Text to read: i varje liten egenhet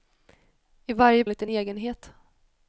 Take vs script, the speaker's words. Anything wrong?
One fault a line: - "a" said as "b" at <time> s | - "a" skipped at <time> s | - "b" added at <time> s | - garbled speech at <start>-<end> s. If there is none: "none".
none